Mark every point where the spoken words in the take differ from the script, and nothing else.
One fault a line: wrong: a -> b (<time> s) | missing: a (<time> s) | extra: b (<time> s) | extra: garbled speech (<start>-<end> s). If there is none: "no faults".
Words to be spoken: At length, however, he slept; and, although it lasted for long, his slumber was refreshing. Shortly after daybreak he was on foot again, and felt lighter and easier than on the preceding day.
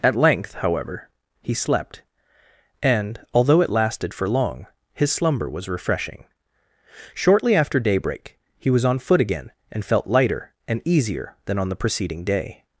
no faults